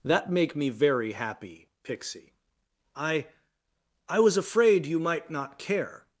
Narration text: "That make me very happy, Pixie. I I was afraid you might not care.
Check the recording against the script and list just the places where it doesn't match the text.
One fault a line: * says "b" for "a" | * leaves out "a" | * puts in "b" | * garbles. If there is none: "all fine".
all fine